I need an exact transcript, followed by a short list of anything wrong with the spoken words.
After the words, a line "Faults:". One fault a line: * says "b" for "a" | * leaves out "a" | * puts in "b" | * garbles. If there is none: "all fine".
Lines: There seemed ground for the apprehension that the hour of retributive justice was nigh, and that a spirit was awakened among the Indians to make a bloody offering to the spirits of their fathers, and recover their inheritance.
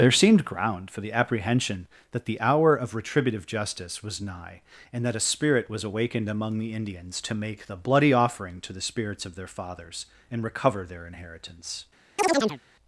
There seemed ground for the apprehension that the hour of retributive justice was nigh, and that a spirit was awakened among the Indians to make the bloody offering to the spirits of their fathers, and recover their inheritance.
Faults:
* says "the" for "a"